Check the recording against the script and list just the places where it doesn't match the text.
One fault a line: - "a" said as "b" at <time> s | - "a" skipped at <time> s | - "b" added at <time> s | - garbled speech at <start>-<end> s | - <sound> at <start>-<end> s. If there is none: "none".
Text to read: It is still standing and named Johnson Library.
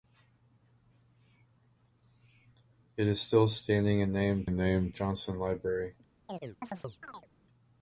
- "and named" added at 4.4 s
- chirp at 6.3-7.3 s